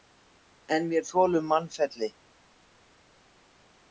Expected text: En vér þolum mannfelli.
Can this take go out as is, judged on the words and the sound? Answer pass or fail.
pass